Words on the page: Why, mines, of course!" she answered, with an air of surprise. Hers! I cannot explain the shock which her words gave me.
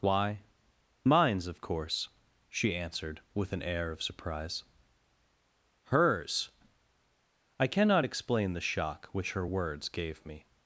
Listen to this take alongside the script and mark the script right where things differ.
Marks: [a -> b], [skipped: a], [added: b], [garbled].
Why, mines, of course!" she answered, with an air of surprise. Hers! I cannot explain the shock which her words gave me.